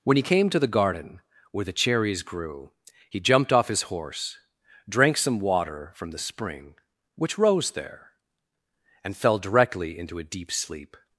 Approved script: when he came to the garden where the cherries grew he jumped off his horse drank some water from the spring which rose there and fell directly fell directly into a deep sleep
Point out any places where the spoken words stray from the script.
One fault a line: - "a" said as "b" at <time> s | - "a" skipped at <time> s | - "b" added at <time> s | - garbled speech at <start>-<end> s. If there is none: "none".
- "fell directly" skipped at 10.0 s